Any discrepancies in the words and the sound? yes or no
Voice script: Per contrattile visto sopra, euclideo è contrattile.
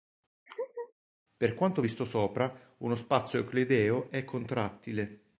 yes